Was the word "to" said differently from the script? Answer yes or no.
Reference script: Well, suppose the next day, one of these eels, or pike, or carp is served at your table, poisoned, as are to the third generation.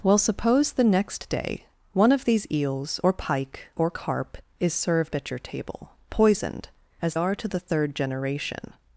no